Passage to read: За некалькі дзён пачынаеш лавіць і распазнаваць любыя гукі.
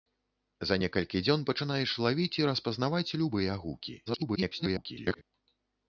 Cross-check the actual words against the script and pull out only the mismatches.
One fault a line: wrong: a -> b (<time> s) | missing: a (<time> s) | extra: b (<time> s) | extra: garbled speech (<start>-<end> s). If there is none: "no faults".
extra: garbled speech (4.1-5.2 s)